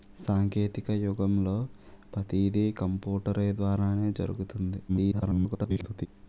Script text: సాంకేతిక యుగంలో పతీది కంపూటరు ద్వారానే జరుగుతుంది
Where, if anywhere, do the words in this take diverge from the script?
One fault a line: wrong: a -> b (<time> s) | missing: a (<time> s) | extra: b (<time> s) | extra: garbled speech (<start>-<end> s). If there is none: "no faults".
extra: garbled speech (4.9-6.1 s)